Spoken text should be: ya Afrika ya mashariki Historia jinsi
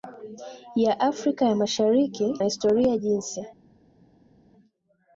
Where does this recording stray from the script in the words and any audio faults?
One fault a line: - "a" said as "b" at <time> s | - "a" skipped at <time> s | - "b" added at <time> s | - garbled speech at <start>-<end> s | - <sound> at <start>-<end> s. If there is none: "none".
none